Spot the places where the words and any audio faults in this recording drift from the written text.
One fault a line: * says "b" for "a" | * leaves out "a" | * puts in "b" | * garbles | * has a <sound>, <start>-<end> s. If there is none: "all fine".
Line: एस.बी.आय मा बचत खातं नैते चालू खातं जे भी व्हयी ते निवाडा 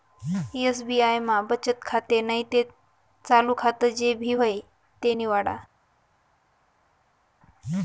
all fine